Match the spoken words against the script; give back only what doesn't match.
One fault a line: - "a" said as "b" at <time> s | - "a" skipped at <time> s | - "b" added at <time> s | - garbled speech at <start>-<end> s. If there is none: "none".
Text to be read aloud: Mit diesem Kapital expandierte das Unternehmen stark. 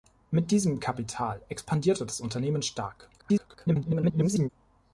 - garbled speech at 3.2-4.5 s